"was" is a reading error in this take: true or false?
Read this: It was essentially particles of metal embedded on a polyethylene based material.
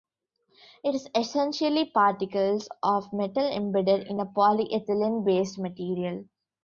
true